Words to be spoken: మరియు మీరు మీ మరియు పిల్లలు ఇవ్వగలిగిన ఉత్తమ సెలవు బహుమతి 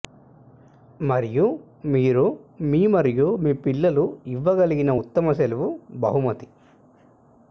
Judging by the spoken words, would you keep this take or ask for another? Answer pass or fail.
fail